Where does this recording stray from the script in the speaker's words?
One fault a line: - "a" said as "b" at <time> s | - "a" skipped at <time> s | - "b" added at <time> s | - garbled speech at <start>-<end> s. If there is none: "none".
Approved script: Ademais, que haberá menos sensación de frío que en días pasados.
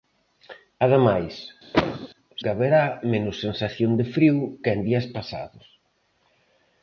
none